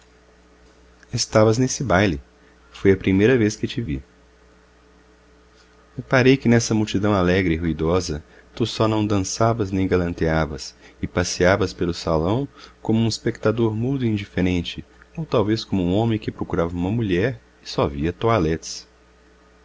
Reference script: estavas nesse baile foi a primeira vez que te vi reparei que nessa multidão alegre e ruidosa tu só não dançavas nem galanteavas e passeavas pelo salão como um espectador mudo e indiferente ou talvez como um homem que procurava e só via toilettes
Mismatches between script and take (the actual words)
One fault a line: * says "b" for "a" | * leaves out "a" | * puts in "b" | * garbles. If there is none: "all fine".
* puts in "uma mulher"